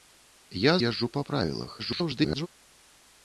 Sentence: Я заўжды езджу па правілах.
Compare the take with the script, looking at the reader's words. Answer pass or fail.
fail